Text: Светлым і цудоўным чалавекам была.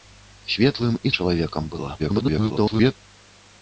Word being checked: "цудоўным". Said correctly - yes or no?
no